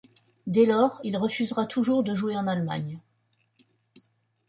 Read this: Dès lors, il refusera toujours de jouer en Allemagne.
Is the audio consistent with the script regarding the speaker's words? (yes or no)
yes